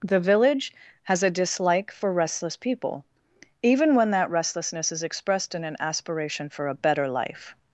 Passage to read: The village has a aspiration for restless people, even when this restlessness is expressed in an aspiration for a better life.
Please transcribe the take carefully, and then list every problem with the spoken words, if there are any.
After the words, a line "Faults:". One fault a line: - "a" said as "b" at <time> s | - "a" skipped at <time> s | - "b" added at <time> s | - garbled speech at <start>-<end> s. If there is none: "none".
The village has a dislike for restless people, even when that restlessness is expressed in an aspiration for a better life.
Faults:
- "aspiration" said as "dislike" at 1.3 s
- "this" said as "that" at 4.1 s